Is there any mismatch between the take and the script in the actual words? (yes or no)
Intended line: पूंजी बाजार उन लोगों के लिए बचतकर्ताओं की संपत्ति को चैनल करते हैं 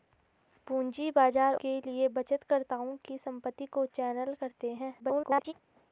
yes